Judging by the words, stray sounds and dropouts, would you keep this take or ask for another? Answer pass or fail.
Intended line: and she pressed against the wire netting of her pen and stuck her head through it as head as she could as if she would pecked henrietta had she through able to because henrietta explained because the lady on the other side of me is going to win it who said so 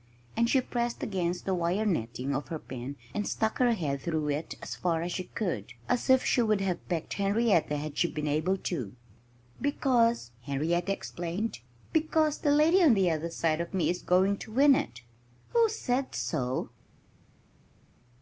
fail